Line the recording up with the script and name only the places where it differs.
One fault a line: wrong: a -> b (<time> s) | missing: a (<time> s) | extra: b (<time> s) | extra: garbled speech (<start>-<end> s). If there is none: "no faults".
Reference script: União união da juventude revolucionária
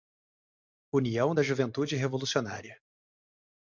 missing: união (1.4 s)